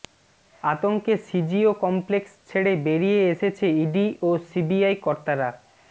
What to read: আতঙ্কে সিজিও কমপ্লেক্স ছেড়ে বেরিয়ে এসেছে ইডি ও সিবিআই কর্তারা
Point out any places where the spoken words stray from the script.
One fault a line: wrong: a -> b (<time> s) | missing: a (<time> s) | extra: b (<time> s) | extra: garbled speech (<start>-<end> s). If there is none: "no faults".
no faults